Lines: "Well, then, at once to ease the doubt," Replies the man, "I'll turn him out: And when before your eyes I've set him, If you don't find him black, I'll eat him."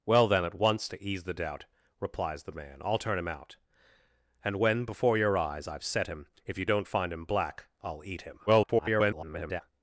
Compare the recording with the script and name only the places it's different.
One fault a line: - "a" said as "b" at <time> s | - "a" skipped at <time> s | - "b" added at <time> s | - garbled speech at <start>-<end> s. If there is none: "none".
- garbled speech at 8.5-9.6 s